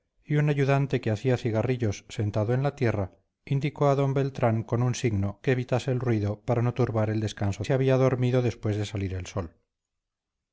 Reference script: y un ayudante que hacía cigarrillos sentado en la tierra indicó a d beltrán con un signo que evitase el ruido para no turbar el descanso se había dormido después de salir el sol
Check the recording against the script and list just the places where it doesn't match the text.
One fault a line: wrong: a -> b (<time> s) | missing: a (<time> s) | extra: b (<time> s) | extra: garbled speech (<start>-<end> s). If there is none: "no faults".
no faults